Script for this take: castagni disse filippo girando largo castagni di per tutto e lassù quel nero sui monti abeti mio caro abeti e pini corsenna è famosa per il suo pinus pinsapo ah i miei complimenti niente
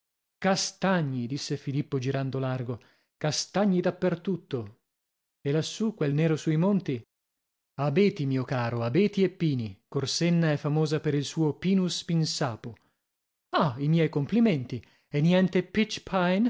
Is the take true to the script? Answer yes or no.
no